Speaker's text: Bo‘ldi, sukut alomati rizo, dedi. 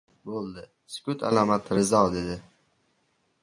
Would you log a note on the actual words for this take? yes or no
no